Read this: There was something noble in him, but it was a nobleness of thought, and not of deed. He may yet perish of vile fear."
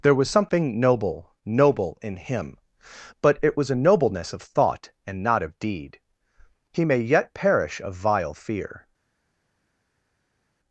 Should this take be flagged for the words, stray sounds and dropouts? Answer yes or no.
yes